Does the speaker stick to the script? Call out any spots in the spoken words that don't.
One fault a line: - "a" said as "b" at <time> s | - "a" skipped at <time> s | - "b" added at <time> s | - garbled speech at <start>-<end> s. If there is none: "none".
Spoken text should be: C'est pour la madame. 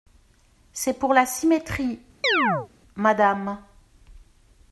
- "symétrie" added at 1.3 s